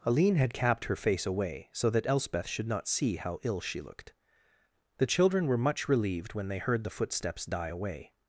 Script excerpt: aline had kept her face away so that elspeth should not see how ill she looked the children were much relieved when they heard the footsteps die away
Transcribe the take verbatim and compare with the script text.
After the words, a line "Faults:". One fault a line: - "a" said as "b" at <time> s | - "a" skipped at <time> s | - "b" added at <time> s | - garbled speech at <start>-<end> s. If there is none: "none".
aline had capped her face away so that elspeth should not see how ill she looked the children were much relieved when they heard the footsteps die away
Faults:
- "kept" said as "capped" at 0.5 s